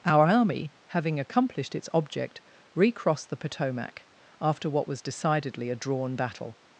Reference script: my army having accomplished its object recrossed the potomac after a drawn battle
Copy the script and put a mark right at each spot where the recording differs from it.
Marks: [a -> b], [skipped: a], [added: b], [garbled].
[my -> our] army having accomplished its object recrossed the potomac after [added: what was decidedly] a drawn battle